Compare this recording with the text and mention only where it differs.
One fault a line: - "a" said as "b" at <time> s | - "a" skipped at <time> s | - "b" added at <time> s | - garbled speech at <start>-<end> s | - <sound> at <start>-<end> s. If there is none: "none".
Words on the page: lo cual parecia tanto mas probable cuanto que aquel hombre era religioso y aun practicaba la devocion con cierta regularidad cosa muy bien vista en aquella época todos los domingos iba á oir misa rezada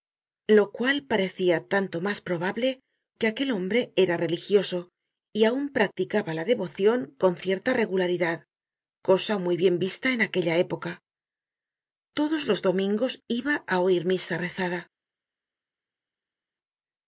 - "cuanto" skipped at 2.7 s